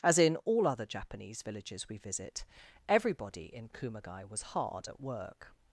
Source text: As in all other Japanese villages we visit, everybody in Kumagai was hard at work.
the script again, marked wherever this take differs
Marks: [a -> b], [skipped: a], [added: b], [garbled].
As in all other Japanese villages we visit, everybody in Kumagai was hard at work.